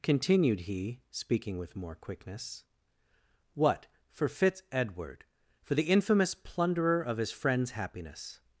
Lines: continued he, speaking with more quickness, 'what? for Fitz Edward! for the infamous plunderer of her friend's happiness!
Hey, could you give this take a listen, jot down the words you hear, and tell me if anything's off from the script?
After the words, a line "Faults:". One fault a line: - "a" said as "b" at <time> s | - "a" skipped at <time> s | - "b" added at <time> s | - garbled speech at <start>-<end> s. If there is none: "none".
continued he, speaking with more quickness, 'what? for Fitz Edward! for the infamous plunderer of his friend's happiness!
Faults:
- "her" said as "his" at 7.2 s